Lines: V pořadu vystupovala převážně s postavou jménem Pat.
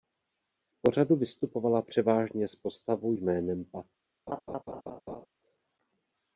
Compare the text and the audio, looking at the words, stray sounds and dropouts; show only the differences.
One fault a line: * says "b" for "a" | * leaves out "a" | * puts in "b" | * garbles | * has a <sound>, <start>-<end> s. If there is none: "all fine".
* has a laugh, 4.3-5.3 s